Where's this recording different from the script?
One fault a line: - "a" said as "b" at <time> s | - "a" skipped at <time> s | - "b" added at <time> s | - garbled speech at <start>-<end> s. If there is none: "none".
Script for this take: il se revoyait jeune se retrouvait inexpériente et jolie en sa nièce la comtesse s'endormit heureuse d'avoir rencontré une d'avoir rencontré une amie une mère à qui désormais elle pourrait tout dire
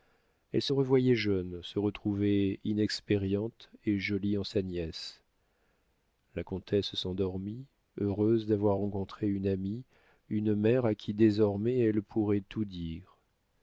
- "il" said as "elle" at 0.5 s
- "d'avoir rencontré une" skipped at 9.5 s